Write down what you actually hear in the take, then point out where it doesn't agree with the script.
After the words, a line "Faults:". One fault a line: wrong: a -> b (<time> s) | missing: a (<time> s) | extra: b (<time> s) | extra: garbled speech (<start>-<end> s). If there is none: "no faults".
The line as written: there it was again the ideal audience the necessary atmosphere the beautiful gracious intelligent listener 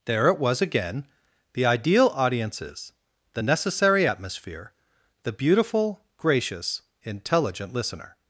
there it was again the ideal audiences the necessary atmosphere the beautiful gracious intelligent listener
Faults:
wrong: audience -> audiences (2.1 s)